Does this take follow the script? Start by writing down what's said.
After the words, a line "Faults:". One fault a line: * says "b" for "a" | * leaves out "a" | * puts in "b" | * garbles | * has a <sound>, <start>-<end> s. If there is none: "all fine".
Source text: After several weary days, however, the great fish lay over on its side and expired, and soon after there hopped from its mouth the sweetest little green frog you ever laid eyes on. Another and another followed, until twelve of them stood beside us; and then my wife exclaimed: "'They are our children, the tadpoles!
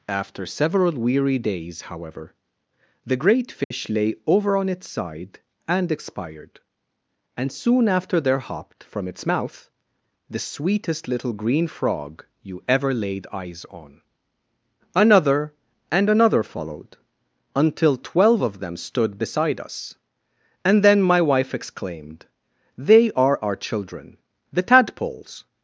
After several weary days, however, the great fish lay over on its side and expired, and soon after there hopped from its mouth the sweetest little green frog you ever laid eyes on. Another and another followed, until twelve of them stood beside us; and then my wife exclaimed: "'They are our children, the tadpoles!
Faults:
* has a dropout, 3.6-3.7 s